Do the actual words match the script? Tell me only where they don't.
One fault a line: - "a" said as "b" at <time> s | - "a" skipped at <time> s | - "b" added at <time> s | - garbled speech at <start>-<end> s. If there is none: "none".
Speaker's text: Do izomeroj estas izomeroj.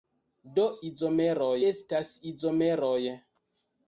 none